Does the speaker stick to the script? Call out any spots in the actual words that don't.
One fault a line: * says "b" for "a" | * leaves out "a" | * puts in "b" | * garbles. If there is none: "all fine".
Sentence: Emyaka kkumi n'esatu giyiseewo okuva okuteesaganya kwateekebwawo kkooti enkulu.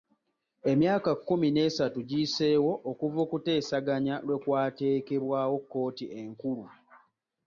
* puts in "lwe"